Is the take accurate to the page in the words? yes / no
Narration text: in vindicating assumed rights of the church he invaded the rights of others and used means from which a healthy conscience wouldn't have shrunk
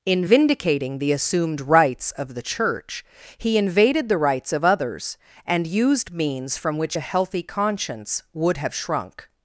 no